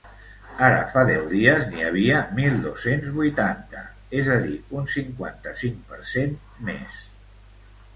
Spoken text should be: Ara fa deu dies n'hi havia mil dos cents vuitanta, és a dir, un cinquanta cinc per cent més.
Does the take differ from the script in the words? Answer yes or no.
no